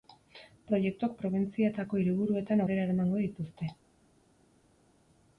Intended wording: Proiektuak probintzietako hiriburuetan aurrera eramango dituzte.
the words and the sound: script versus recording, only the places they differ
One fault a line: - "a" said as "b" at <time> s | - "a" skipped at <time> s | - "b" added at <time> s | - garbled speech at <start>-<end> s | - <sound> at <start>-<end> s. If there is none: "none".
none